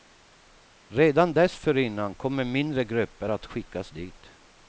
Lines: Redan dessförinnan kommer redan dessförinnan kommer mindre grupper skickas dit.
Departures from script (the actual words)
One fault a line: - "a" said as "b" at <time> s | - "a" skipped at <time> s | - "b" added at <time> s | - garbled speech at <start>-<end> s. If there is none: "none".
- "redan dessförinnan kommer" skipped at 2.4 s
- "att" added at 3.3 s